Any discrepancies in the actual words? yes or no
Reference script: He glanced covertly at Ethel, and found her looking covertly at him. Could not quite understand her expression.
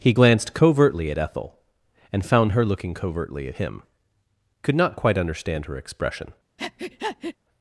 no